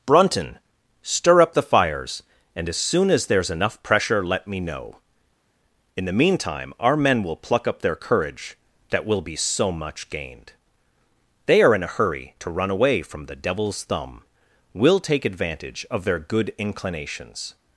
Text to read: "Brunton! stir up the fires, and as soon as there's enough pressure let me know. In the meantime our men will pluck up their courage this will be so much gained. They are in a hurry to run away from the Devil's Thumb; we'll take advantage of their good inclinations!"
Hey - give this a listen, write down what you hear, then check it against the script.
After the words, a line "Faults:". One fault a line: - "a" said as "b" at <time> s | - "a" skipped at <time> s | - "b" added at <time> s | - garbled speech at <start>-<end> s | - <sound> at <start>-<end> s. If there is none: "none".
"Brunton! stir up the fires, and as soon as there's enough pressure let me know. In the meantime our men will pluck up their courage that will be so much gained. They are in a hurry to run away from the Devil's Thumb; we'll take advantage of their good inclinations!"
Faults:
- "this" said as "that" at 8.9 s